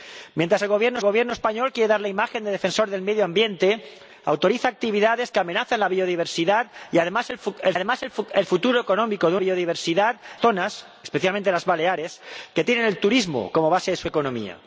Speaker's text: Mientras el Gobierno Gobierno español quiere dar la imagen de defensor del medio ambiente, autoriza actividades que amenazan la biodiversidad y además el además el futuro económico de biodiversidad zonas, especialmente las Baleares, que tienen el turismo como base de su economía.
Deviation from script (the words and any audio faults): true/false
false